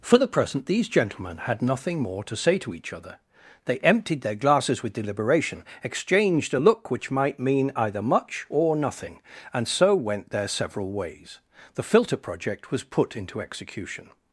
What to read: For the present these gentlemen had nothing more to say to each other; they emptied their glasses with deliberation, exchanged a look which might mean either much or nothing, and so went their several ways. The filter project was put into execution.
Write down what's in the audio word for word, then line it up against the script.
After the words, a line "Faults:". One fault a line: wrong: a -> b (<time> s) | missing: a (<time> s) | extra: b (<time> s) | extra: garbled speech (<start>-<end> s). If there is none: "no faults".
For the present these gentlemen had nothing more to say to each other; they emptied their glasses with deliberation, exchanged a look which might mean either much or nothing, and so went their several ways. The filter project was put into execution.
Faults:
no faults